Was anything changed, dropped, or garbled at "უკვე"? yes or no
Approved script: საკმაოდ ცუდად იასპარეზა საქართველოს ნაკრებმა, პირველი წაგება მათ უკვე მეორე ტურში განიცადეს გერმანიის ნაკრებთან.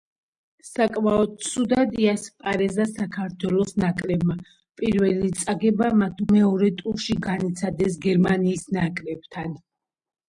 yes